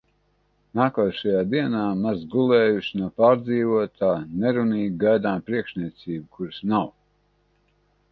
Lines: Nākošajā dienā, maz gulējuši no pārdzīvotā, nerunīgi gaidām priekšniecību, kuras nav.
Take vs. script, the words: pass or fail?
pass